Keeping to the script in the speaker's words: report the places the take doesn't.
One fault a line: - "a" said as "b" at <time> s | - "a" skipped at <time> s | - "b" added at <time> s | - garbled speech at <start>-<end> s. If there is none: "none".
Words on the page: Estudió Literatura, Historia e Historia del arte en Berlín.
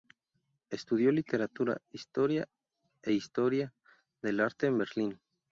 none